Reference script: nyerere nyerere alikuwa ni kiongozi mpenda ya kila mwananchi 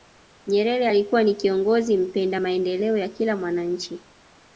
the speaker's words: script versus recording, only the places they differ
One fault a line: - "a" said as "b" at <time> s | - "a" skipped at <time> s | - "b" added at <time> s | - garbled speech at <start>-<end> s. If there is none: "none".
- "nyerere" skipped at 0.9 s
- "maendeleo" added at 2.4 s